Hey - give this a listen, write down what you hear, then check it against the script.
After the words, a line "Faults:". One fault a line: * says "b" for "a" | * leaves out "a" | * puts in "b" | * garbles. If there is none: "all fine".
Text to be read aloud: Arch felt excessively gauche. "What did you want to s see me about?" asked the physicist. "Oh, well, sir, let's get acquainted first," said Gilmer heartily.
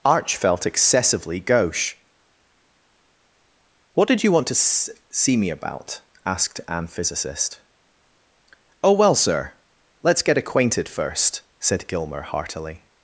Arch felt excessively gauche. "What did you want to s see me about?" asked an physicist. "Oh, well, sir, let's get acquainted first," said Gilmer heartily.
Faults:
* says "an" for "the"